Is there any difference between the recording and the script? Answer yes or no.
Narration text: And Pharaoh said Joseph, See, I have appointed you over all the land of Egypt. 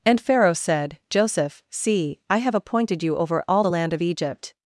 no